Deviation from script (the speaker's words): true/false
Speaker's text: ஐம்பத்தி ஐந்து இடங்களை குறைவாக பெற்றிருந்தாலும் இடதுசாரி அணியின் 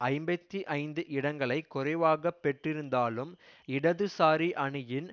false